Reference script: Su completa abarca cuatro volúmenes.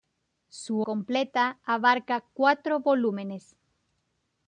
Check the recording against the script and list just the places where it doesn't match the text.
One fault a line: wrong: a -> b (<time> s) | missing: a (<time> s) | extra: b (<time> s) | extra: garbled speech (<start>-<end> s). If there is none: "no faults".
no faults